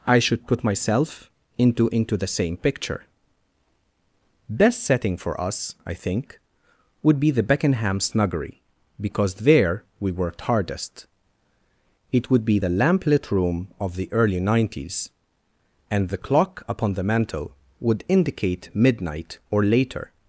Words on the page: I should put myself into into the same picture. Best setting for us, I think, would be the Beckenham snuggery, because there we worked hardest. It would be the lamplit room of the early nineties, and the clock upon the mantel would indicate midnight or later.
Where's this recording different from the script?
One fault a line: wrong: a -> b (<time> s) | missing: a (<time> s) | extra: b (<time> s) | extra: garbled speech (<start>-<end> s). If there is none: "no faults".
no faults